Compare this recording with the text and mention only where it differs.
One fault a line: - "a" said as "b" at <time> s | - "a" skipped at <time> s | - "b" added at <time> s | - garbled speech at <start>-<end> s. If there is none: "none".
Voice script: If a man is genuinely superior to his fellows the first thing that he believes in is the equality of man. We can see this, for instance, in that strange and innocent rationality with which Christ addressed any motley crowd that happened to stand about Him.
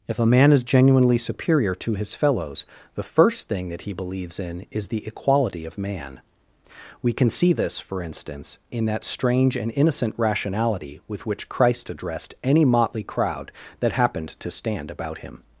none